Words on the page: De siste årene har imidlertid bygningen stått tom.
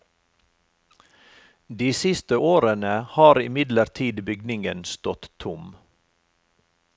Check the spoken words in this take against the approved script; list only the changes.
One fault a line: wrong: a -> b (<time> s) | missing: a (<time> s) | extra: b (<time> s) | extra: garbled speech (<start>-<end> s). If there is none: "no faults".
no faults